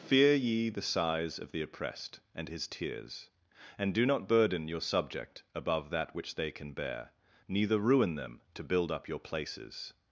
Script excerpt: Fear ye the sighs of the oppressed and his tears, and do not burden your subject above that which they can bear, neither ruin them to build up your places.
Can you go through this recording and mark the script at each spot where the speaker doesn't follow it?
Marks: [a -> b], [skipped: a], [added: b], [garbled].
Fear ye the sighs of the oppressed and his tears, and do not burden your subject above that which they can bear, neither ruin them to build up your places.